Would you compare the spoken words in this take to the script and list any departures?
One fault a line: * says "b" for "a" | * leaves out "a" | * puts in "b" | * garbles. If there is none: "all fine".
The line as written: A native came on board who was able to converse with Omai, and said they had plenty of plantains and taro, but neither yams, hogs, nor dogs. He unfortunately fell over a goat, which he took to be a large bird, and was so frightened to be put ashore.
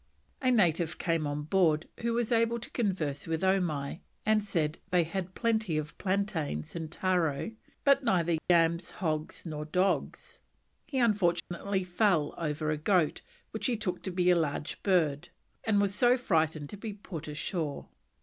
all fine